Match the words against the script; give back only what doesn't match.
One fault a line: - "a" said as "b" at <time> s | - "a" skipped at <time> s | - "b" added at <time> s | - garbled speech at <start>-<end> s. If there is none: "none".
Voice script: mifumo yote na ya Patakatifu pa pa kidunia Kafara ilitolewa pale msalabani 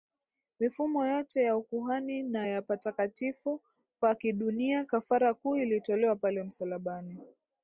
- "ya ukuhani" added at 1.4 s
- "pa" skipped at 4.1 s
- "kuu" added at 5.3 s